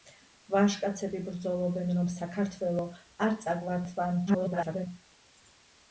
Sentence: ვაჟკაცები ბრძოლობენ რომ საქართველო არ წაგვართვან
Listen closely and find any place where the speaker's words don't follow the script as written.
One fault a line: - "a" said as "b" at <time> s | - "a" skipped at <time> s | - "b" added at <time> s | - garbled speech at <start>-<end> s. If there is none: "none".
- garbled speech at 4.3-4.9 s